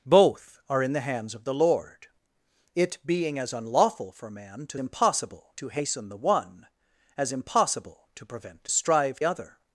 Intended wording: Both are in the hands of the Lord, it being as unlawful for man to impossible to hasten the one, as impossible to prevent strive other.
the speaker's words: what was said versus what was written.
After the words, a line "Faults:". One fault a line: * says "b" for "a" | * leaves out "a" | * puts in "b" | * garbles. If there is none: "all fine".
Both are in the hands of the Lord, it being as unlawful for man to impossible to hasten the one, as impossible to prevent strive other.
Faults:
all fine